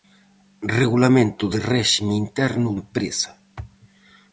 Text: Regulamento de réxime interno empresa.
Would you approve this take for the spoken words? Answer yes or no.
yes